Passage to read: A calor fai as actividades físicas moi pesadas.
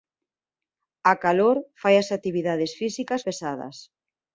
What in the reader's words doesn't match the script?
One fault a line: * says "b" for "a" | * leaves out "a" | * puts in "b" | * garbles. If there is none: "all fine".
* leaves out "moi"